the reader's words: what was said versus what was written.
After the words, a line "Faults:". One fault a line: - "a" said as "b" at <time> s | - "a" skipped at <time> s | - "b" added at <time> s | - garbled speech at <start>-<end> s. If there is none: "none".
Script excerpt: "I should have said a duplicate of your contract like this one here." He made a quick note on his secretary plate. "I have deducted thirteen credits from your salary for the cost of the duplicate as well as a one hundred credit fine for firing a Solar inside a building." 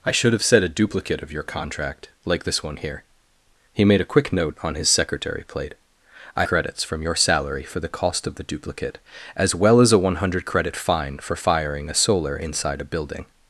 "I should have said a duplicate of your contract like this one here." He made a quick note on his secretary plate. "I credits from your salary for the cost of the duplicate as well as a one hundred credit fine for firing a Solar inside a building."
Faults:
- "have deducted thirteen" skipped at 6.5 s